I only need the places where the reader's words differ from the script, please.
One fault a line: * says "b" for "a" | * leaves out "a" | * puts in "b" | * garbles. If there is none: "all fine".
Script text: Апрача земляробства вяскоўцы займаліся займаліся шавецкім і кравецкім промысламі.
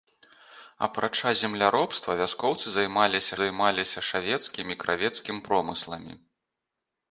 all fine